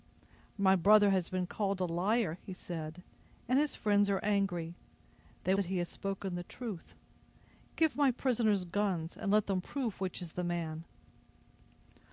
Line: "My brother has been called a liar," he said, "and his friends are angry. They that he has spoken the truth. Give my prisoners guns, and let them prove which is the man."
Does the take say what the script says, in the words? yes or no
yes